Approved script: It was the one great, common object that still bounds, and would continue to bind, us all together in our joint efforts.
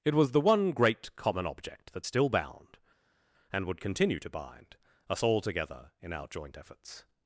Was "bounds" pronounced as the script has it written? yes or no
no